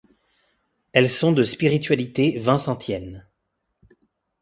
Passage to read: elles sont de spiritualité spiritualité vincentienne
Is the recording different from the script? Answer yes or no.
yes